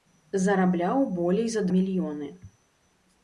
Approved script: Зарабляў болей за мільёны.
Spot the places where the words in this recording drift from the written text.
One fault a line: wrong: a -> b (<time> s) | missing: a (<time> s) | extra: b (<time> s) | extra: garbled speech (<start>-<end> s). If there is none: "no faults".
no faults